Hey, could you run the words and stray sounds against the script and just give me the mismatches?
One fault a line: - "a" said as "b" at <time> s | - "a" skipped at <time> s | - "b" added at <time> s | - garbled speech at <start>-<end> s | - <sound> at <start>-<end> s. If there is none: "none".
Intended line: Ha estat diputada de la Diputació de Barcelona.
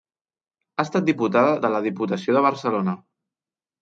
none